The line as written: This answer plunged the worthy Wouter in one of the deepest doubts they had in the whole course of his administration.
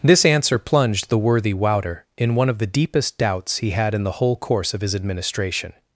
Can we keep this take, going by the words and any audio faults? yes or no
no